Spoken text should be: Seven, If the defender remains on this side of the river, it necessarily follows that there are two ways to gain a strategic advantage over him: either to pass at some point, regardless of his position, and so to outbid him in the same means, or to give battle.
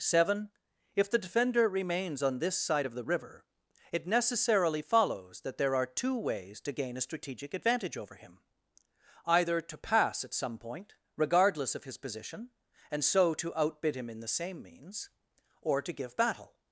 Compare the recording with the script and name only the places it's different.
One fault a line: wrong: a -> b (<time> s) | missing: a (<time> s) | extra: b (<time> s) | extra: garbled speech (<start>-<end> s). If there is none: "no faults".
no faults